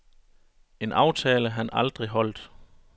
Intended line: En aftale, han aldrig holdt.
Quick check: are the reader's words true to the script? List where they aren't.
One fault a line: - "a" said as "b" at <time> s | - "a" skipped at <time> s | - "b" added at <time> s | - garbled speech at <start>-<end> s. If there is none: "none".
none